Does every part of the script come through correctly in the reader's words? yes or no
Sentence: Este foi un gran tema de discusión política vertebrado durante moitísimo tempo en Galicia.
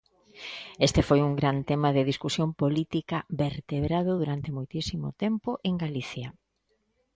yes